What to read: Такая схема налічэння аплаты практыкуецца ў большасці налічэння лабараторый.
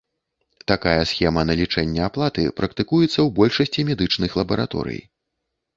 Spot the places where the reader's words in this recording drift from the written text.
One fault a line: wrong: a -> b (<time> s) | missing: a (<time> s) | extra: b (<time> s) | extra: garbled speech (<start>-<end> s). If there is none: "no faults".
wrong: налічэння -> медычных (3.9 s)